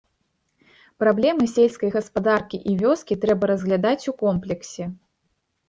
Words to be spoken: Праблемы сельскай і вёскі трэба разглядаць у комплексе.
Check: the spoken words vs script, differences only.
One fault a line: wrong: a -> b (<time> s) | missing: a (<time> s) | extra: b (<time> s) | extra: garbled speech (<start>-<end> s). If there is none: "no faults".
extra: гаспадаркі (2.0 s)